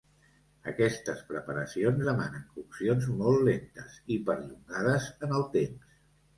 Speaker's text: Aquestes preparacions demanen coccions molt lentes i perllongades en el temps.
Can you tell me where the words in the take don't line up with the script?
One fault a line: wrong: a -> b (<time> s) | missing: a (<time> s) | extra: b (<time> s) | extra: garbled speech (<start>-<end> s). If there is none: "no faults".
no faults